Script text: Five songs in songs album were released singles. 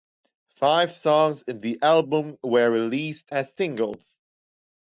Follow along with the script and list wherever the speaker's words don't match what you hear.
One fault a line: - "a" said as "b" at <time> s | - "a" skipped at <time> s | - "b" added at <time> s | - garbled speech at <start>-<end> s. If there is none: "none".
- "songs" said as "the" at 1.6 s
- "as" added at 3.3 s